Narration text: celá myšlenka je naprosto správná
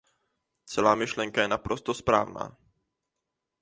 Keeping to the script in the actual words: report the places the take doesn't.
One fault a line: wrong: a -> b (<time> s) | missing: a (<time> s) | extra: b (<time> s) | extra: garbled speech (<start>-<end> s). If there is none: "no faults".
no faults